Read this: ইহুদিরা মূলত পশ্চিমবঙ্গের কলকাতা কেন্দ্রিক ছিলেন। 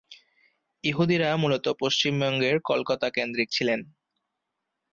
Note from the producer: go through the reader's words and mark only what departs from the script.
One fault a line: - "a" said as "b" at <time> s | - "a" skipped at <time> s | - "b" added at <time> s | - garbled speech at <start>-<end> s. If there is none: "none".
none